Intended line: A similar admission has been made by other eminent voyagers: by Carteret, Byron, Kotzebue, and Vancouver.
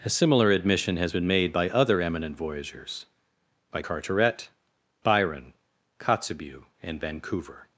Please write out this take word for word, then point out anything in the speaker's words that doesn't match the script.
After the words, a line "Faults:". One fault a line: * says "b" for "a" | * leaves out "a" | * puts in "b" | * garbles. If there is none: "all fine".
A similar admission has been made by other eminent voyagers: by Carteret, Byron, Kotzebue, and Vancouver.
Faults:
all fine